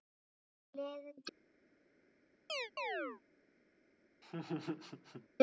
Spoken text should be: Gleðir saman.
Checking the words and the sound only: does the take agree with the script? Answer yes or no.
no